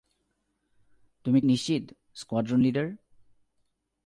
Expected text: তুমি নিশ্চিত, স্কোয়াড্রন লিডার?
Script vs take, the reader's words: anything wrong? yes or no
no